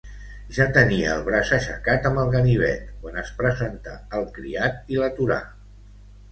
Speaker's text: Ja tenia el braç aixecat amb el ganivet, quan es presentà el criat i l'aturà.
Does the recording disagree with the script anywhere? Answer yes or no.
no